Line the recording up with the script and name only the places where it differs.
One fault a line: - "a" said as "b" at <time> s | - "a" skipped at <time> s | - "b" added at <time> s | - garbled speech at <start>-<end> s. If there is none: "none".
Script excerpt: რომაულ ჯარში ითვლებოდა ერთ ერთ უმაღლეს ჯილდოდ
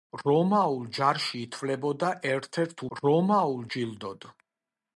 - "უმაღლეს" said as "რომაულ" at 3.0 s